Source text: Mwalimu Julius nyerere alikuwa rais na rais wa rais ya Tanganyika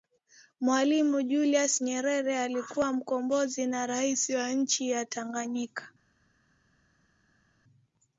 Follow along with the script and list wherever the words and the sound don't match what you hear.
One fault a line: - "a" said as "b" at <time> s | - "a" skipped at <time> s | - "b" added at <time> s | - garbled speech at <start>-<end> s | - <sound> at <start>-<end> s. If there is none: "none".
- "rais" said as "mkombozi" at 2.9 s
- "rais" said as "nchi" at 4.5 s